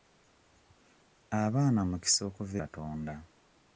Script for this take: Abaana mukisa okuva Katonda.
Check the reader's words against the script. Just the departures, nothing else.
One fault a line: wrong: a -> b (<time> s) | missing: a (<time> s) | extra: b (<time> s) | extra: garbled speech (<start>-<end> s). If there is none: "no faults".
no faults